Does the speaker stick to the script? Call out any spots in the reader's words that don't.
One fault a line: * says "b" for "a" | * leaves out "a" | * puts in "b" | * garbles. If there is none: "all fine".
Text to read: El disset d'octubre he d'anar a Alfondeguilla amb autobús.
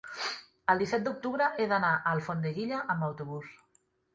all fine